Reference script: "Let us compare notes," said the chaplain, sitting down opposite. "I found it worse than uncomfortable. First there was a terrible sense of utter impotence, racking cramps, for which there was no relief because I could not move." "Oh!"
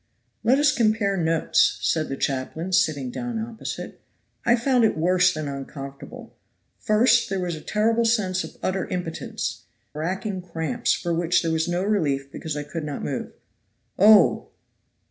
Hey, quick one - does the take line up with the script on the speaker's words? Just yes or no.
yes